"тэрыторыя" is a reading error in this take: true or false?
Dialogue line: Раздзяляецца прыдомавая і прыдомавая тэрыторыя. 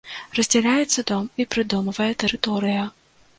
false